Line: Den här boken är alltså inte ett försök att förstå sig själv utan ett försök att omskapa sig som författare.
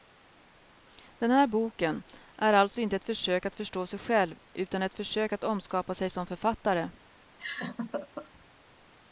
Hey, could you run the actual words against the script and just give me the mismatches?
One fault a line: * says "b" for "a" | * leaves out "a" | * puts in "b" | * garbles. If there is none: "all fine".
all fine